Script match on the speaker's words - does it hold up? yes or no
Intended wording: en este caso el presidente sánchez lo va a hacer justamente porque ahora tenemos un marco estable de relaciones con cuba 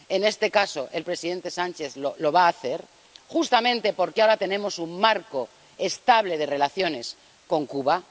yes